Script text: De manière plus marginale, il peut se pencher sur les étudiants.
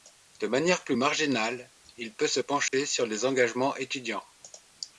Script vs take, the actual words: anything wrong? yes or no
yes